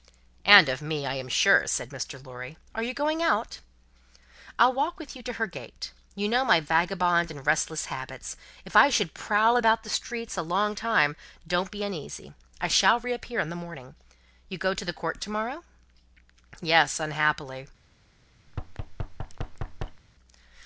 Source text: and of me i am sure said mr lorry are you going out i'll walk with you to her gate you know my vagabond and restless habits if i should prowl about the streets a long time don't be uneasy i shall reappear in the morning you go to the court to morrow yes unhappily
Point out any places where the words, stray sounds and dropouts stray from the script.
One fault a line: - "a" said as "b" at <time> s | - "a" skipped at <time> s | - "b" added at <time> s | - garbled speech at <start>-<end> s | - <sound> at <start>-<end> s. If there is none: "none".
- thud at 18.5-20.0 s